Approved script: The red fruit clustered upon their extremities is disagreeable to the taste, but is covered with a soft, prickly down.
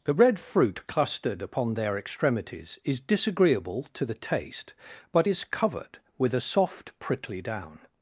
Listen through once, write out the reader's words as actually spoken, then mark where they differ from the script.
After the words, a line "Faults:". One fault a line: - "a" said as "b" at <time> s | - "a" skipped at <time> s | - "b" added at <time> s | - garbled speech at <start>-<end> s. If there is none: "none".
The red fruit clustered upon their extremities is disagreeable to the taste, but is covered with a soft, prickly down.
Faults:
none